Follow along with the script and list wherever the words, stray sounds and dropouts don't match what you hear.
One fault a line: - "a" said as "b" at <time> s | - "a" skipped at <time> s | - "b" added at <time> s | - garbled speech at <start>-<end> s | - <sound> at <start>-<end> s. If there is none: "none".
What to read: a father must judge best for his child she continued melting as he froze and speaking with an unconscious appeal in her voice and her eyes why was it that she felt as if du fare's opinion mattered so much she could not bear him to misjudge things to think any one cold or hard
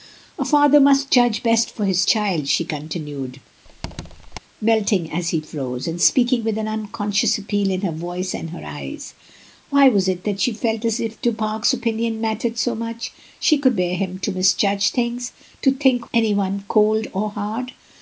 - squeak at 3.6-4.4 s
- "not" skipped at 13.8 s